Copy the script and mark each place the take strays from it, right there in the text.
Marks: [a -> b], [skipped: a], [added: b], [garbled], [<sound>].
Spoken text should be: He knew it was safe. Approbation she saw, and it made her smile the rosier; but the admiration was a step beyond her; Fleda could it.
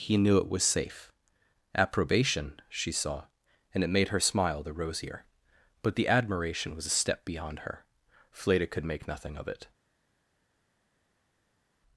He knew it was safe. Approbation she saw, and it made her smile the rosier; but the admiration was a step beyond her; Fleda could [added: make nothing of] it.